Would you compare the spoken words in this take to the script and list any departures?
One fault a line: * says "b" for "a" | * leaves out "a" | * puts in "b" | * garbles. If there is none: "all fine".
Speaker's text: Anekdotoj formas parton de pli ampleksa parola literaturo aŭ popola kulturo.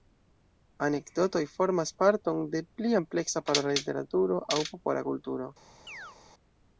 all fine